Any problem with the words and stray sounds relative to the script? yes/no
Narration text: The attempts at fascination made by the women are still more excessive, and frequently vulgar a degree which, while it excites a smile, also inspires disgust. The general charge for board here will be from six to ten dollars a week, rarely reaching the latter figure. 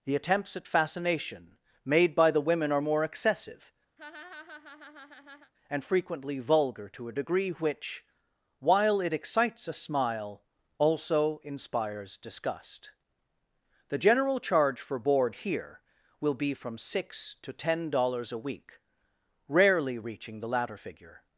yes